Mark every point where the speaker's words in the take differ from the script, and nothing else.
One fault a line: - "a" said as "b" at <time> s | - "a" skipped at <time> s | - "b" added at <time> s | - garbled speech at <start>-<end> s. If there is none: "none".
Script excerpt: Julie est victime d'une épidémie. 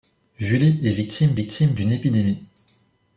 - "victime" added at 1.3 s